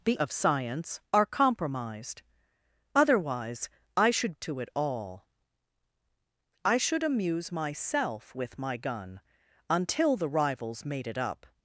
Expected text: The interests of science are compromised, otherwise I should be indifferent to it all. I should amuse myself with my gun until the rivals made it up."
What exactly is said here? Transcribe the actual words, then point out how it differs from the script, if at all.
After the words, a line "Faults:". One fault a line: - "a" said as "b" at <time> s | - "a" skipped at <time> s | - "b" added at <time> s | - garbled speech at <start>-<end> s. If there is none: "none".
The of science are compromised, otherwise I should to it all. I should amuse myself with my gun until the rivals made it up."
Faults:
- "interests" skipped at 0.1 s
- "be indifferent" skipped at 4.3 s